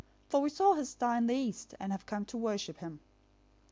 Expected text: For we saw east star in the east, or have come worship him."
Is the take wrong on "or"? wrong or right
wrong